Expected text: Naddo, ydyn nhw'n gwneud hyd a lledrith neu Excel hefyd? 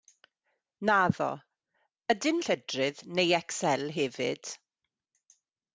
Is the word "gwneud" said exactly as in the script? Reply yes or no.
no